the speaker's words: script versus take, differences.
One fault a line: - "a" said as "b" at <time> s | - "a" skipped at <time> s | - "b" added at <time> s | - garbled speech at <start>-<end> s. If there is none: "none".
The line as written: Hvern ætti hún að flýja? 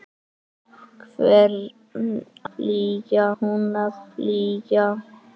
- "ætti" said as "flýja" at 2.5 s